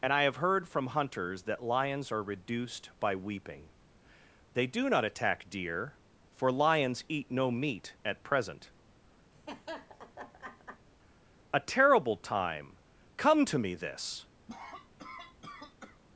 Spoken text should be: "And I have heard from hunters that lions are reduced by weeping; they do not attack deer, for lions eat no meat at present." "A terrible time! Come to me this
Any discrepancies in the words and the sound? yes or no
yes